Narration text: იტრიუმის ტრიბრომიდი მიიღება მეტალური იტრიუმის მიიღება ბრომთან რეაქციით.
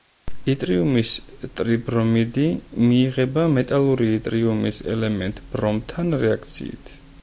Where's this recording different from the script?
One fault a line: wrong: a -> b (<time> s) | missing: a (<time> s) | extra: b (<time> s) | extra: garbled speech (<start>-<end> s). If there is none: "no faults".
wrong: მიიღება -> ელემენტ (5.0 s)